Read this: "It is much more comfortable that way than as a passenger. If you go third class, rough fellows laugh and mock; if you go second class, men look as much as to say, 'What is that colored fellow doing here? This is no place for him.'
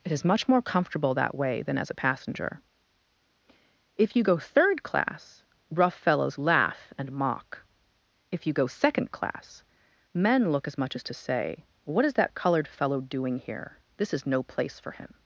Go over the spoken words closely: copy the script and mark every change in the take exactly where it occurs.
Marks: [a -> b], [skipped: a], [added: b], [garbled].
"It is much more comfortable that way than as a passenger. If you go third class, rough fellows laugh and mock; if you go second class, men look as much as to say, 'What is that colored fellow doing here? This is no place for him.'